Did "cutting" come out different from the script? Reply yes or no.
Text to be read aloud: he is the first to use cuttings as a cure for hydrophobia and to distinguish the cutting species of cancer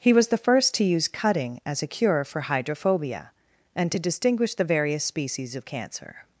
yes